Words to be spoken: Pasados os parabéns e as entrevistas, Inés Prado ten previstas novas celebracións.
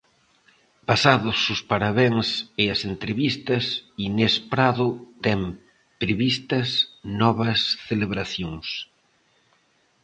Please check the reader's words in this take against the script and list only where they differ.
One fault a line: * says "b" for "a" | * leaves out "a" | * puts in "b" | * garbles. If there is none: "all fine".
all fine